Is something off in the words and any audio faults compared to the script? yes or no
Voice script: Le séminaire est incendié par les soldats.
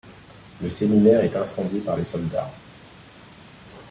no